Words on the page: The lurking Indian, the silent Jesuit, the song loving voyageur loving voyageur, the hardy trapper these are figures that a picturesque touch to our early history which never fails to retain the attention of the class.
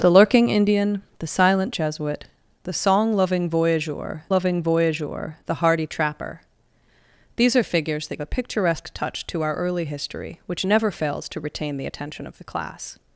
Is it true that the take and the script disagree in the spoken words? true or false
false